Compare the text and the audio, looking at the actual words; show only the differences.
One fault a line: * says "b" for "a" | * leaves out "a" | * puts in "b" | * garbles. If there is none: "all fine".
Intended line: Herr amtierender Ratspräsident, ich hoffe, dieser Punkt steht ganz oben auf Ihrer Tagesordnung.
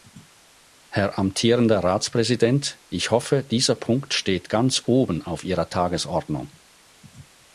all fine